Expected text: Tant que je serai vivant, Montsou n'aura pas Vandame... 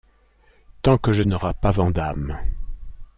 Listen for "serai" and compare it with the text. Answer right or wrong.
wrong